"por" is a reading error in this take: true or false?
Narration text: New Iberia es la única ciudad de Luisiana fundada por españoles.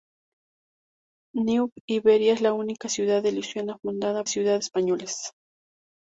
true